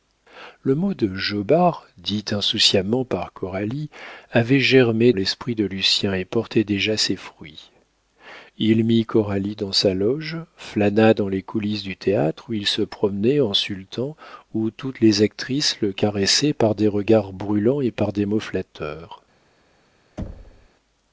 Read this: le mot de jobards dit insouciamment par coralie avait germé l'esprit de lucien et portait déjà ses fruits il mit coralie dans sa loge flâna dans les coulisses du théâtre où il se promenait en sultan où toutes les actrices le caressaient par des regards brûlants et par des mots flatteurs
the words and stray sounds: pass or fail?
fail